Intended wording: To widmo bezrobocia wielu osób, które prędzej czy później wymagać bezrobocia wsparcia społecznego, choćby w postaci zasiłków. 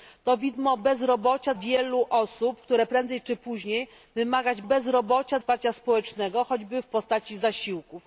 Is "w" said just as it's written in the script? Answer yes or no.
yes